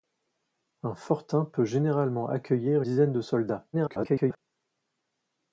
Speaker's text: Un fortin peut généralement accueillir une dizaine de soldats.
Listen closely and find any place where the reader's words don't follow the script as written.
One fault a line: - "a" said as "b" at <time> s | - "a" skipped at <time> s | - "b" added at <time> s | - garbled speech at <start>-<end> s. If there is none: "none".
- "une" skipped at 2.8 s
- garbled speech at 3.7-4.4 s